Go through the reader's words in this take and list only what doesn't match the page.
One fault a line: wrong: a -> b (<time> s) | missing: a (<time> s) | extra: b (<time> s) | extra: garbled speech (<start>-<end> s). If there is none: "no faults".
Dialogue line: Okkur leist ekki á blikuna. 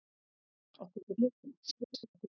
missing: leist (1.0 s)
extra: garbled speech (1.6-2.3 s)